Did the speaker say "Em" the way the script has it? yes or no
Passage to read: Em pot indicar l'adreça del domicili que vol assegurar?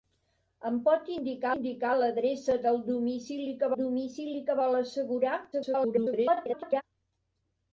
yes